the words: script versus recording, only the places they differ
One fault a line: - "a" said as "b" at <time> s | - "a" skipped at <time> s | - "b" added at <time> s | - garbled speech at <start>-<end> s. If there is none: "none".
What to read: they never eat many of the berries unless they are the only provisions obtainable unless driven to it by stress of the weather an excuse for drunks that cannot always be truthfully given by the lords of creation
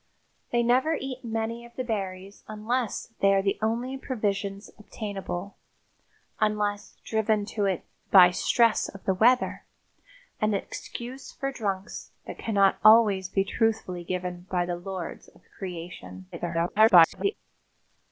- garbled speech at 16.3-17.3 s